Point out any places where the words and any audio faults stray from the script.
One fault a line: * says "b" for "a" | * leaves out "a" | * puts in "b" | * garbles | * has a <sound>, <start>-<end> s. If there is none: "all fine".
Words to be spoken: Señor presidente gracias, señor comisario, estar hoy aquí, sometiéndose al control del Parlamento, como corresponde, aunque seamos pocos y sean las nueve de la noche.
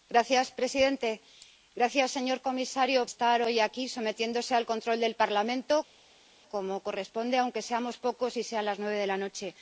all fine